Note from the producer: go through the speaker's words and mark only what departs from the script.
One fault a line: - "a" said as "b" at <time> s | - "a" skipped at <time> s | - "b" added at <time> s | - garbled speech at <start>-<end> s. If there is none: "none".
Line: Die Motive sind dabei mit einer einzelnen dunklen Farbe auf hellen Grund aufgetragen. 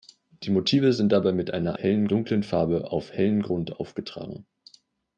- "einzelnen" said as "hellen" at 1.8 s